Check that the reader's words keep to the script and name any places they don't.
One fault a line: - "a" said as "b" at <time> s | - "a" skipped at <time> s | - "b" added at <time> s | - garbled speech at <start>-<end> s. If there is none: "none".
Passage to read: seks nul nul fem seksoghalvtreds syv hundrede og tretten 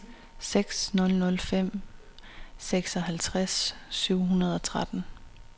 none